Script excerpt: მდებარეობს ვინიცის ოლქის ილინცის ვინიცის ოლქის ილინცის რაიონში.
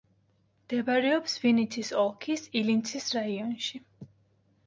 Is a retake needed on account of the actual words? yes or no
yes